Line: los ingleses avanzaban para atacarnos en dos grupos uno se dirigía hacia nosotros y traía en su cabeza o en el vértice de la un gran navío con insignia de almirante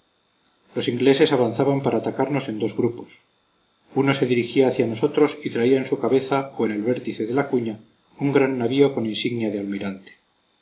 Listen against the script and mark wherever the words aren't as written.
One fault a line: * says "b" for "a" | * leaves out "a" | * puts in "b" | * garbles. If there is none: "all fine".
* puts in "cuña"